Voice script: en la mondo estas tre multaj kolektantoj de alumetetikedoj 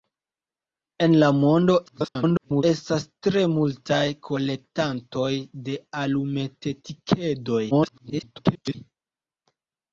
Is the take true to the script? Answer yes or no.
no